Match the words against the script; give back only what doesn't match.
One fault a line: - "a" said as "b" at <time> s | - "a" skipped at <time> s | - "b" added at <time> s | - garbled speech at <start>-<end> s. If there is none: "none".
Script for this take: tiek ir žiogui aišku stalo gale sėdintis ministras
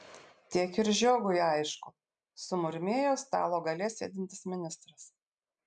- "sumurmėjo" added at 2.5 s